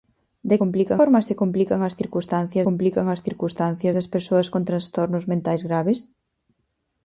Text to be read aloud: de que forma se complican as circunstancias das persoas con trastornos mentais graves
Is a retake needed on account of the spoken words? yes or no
yes